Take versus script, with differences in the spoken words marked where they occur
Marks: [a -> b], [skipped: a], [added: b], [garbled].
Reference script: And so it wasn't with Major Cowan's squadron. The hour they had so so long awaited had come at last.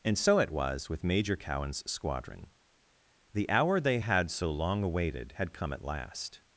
And so it [wasn't -> was] with Major Cowan's squadron. The hour they had so [skipped: so] long awaited had come at last.